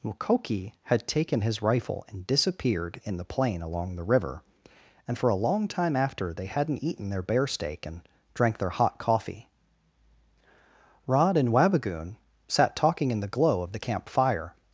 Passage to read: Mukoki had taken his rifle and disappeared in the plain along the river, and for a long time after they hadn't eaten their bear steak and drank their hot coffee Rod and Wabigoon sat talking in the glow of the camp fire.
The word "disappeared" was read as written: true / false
true